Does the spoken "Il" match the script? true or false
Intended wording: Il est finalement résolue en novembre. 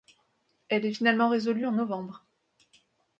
false